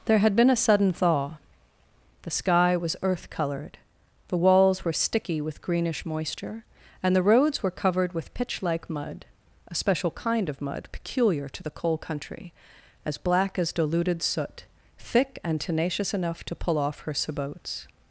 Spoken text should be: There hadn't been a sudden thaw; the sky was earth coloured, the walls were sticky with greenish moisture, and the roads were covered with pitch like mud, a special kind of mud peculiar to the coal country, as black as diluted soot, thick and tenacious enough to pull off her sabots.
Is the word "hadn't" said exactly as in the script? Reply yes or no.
no